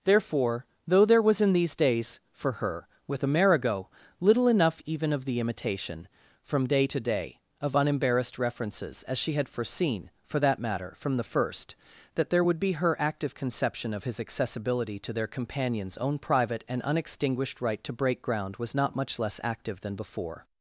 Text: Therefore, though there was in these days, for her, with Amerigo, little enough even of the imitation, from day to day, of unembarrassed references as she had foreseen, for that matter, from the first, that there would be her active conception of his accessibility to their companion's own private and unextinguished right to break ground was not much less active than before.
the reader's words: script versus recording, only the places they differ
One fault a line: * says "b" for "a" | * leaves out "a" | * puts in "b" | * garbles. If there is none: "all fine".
all fine